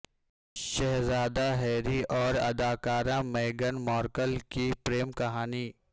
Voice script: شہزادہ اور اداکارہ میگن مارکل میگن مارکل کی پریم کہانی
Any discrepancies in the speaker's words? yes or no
yes